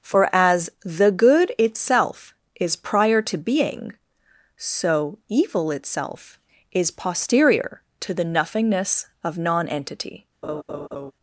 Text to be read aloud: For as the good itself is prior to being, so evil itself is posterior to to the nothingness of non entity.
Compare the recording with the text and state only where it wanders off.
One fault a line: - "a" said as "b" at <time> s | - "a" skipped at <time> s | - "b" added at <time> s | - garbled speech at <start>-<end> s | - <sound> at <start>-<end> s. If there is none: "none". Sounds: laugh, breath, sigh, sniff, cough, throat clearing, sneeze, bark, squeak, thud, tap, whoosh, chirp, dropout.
- "to" skipped at 8.1 s
- laugh at 10.4-11.1 s